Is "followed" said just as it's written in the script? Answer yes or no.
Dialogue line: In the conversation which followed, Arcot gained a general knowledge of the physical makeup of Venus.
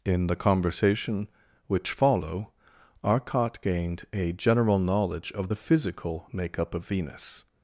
no